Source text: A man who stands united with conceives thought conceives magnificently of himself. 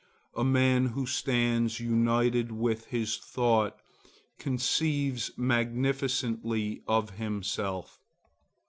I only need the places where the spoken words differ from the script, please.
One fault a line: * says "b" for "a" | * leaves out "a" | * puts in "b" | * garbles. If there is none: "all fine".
* says "his" for "conceives"